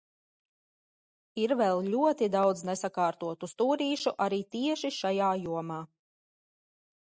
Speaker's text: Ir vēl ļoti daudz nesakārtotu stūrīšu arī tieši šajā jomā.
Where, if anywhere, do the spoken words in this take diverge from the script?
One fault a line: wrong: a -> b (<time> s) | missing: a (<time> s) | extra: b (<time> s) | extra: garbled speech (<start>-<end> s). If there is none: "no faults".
no faults